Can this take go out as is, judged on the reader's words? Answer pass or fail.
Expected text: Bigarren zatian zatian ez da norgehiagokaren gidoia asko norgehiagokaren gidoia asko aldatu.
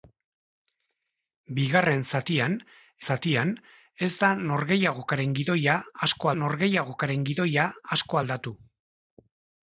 pass